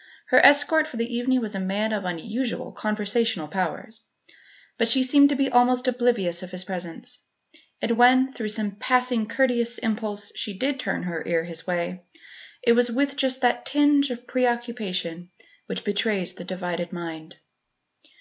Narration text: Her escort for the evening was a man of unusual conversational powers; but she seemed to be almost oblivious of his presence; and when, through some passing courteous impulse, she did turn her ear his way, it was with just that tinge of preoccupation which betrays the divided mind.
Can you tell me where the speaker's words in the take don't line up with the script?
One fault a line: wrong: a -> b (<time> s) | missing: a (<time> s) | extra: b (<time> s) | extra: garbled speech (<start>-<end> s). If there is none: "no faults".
no faults